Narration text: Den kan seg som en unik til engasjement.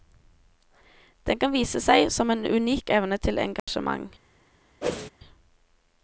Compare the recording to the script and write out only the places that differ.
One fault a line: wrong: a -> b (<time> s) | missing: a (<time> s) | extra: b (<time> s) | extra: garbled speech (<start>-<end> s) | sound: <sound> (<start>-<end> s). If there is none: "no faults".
extra: vise (1.5 s)
extra: evne (2.9 s)
sound: dropout (3.6-3.7 s)
sound: whoosh (4.8-5.1 s)